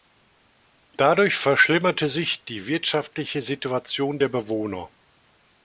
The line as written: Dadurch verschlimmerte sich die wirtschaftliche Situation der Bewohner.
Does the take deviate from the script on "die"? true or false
false